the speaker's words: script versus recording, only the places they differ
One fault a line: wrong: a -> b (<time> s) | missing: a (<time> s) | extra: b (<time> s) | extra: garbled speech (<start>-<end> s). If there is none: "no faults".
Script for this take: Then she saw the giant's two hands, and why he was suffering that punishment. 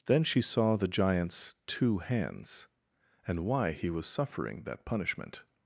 no faults